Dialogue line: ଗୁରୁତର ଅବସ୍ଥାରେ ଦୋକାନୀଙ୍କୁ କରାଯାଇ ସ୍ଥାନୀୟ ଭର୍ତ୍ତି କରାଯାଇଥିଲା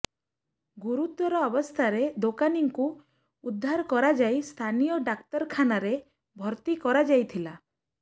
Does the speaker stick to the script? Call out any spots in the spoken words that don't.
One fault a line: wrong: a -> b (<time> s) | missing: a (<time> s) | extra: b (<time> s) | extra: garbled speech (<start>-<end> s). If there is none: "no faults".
extra: ଉଦ୍ଧାର (3.4 s)
extra: ଡାକ୍ତରଖାନାରେ (5.1 s)